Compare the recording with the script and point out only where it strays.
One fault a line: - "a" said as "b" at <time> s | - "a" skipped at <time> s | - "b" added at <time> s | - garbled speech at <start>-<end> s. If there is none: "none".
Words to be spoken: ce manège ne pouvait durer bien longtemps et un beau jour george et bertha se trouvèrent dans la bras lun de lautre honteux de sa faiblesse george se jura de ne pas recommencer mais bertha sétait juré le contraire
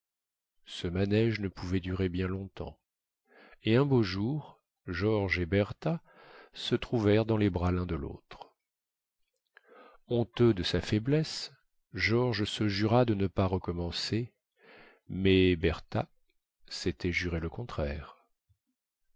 - "la" said as "les" at 7.4 s